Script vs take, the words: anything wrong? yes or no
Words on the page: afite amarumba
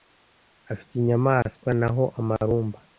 yes